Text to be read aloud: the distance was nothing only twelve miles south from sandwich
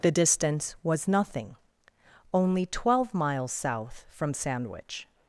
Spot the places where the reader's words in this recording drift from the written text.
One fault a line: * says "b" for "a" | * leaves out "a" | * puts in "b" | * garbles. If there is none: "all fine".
all fine